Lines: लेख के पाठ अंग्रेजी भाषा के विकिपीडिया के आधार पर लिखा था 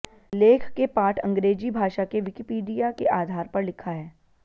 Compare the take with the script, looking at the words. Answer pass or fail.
fail